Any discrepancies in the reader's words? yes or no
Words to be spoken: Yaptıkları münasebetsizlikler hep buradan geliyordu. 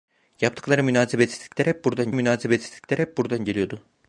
yes